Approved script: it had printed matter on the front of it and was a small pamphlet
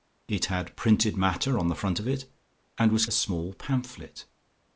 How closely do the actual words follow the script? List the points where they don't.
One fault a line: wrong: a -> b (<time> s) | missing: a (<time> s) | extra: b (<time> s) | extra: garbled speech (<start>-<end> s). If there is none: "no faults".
no faults